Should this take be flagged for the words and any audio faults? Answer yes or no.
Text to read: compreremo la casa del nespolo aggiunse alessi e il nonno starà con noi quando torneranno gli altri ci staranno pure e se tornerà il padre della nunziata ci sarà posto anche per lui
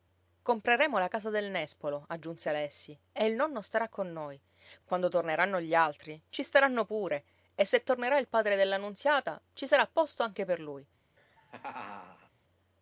yes